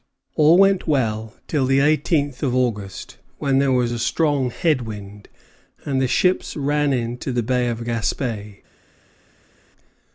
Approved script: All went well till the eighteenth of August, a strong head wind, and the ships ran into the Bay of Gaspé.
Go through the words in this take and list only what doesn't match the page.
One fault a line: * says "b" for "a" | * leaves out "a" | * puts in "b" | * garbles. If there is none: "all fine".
* puts in "when there was"